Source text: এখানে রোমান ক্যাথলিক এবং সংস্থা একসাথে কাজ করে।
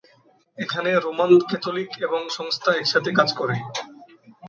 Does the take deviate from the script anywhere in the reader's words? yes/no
no